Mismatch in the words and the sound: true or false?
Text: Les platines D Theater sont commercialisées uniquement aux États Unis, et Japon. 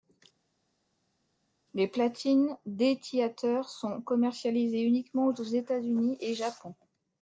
false